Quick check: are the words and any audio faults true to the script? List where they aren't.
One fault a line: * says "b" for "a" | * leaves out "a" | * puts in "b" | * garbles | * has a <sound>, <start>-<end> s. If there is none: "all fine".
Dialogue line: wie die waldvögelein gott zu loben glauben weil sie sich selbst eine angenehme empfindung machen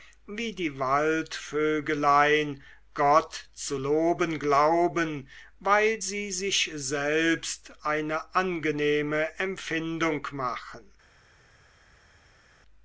all fine